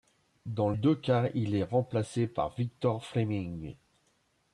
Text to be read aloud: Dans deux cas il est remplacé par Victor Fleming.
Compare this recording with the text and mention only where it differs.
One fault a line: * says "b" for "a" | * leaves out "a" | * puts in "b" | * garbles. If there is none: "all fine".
all fine